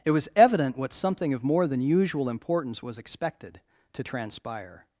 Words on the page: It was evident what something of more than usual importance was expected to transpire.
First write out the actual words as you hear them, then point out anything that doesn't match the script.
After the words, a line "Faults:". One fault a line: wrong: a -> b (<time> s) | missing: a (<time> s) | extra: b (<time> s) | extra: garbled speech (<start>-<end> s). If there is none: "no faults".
It was evident what something of more than usual importance was expected to transpire.
Faults:
no faults